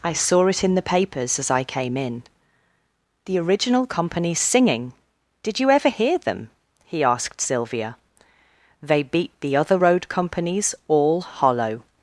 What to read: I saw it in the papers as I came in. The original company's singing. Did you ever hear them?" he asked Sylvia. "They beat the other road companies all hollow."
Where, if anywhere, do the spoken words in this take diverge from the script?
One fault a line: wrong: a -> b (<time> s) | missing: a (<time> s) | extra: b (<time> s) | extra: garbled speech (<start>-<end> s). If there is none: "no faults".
no faults